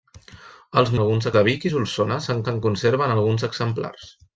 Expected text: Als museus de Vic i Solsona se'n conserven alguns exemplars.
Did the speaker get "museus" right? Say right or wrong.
wrong